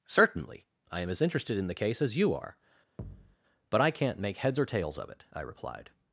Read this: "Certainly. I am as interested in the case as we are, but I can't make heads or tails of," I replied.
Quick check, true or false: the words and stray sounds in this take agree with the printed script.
false